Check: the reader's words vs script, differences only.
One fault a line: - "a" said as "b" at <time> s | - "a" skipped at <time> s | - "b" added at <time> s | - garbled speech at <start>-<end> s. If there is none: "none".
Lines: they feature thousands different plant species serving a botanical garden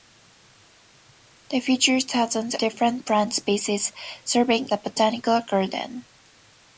none